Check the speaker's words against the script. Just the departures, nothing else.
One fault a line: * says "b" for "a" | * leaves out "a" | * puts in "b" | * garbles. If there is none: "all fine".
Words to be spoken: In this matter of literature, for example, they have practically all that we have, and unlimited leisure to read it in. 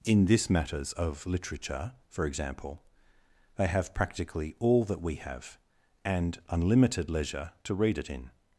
* says "matters" for "matter"